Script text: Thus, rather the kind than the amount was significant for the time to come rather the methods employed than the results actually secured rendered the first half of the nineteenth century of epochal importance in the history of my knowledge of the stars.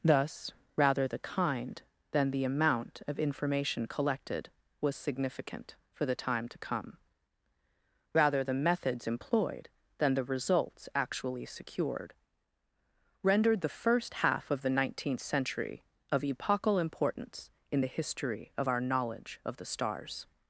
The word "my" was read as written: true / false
false